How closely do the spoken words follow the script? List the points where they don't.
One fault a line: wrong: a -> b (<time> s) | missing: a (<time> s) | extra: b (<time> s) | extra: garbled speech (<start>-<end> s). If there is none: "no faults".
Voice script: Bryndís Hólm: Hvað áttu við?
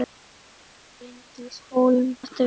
missing: Hvað (2.1 s)